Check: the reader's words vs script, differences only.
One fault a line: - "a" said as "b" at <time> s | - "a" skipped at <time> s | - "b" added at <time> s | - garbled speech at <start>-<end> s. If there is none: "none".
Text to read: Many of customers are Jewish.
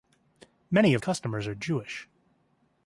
none